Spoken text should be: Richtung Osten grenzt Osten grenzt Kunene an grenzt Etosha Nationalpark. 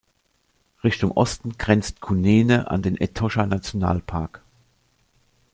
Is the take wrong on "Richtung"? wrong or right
right